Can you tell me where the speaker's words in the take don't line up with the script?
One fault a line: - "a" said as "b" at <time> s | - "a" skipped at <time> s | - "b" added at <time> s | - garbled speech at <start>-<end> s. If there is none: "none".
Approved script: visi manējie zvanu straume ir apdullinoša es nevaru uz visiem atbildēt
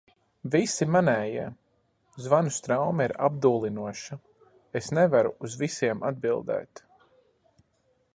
none